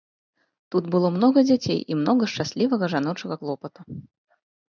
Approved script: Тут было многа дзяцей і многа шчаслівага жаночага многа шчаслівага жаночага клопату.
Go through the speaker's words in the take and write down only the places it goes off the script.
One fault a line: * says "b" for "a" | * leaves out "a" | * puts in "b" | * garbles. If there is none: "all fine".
* leaves out "многа шчаслівага жаночага"